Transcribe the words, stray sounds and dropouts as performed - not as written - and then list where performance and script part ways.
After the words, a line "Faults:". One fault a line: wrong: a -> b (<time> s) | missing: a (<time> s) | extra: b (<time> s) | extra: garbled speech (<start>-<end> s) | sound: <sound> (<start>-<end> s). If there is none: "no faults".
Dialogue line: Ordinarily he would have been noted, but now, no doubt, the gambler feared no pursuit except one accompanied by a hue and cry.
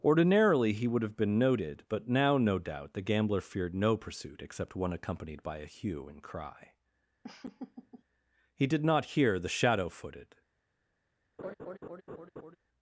Ordinarily he would have been noted, but now, no doubt, the gambler feared no pursuit except one accompanied by a hue and cry. He did not hear the shadow footed
Faults:
sound: laugh (7.2-8.0 s)
extra: He did not hear the shadow footed (8.6 s)
sound: laugh (11.4-12.6 s)